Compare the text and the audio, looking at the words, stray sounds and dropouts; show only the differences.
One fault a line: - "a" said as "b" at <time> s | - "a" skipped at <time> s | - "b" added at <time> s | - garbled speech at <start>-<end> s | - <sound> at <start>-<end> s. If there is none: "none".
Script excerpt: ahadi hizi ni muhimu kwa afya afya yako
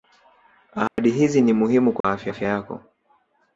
- dropout at 0.9-1.0 s
- dropout at 2.0-2.0 s